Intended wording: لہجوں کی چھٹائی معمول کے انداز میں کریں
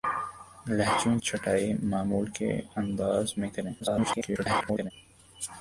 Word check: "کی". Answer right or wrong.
wrong